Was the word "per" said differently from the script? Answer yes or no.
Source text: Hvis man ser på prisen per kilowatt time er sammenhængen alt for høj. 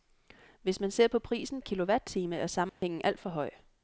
yes